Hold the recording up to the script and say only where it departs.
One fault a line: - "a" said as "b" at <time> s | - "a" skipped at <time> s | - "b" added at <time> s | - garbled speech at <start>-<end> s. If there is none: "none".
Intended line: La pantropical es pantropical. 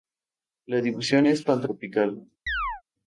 - "pantropical" said as "distribución" at 0.8 s